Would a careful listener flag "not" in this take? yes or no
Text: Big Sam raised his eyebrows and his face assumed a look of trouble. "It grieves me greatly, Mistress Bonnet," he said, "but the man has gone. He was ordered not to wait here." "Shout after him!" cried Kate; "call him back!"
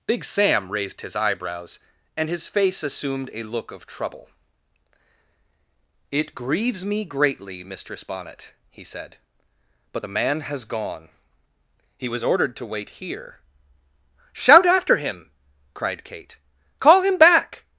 yes